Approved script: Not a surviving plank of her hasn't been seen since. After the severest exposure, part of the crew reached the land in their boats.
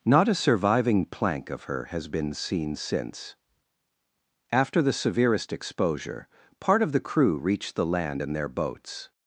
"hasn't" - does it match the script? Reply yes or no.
no